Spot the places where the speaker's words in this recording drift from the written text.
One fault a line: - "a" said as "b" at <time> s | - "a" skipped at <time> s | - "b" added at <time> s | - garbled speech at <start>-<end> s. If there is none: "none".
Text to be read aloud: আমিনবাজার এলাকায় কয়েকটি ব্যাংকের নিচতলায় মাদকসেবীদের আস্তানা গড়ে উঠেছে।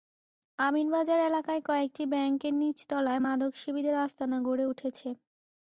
none